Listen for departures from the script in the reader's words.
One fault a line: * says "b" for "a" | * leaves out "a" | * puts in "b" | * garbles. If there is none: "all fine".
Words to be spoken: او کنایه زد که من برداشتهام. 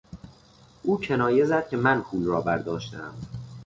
* puts in "پول را"